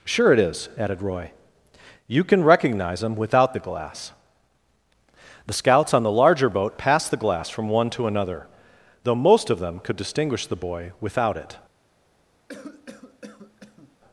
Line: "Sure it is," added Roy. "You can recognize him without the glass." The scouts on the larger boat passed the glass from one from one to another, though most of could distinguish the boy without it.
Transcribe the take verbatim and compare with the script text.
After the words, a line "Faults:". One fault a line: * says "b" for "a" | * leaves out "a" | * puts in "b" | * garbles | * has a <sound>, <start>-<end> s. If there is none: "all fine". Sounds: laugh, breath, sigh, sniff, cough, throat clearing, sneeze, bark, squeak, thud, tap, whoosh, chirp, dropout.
"Sure it is," added Roy. "You can recognize him without the glass." The scouts on the larger boat passed the glass from one to another, though most of them could distinguish the boy without it.
Faults:
* leaves out "from one"
* puts in "them"
* has a cough, 12.5-14.0 s